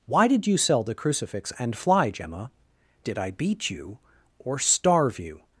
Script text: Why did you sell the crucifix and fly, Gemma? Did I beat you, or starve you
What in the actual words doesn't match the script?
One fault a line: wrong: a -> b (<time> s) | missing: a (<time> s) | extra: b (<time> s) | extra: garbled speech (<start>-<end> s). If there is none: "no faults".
no faults